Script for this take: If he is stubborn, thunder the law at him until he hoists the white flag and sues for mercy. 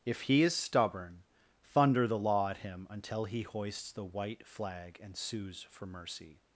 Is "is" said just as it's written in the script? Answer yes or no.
yes